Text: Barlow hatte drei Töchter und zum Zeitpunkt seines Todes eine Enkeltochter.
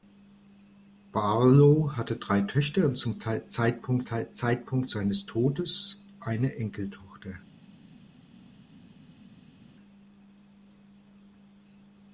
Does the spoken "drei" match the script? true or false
true